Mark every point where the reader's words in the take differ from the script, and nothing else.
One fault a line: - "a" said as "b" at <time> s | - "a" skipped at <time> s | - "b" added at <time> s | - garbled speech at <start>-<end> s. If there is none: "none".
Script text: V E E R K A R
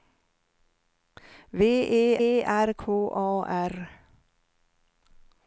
none